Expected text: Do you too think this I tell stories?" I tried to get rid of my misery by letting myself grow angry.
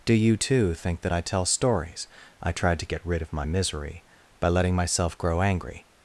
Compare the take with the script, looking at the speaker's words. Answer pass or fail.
fail